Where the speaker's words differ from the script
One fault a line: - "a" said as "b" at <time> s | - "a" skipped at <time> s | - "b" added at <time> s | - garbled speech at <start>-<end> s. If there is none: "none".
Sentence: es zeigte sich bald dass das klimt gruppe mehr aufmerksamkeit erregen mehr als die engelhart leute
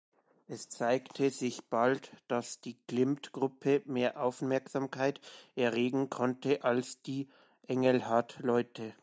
- "das" said as "die" at 2.6 s
- "mehr" said as "konnte" at 6.1 s